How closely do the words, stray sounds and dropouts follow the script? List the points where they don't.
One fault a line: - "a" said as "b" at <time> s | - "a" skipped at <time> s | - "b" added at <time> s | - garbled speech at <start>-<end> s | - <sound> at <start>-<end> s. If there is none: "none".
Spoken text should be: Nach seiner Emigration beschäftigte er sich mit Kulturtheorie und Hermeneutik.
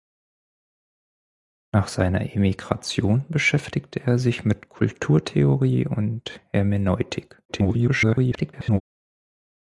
- garbled speech at 7.5-8.8 s